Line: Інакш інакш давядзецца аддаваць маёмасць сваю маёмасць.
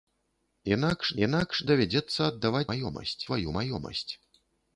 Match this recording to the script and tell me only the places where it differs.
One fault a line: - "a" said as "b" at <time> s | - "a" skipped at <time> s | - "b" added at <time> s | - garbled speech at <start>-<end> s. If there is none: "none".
none